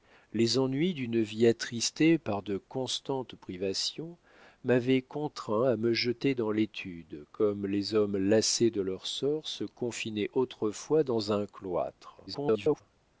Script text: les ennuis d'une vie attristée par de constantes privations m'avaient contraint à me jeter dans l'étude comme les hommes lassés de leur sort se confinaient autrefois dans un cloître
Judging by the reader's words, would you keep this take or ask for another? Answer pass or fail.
fail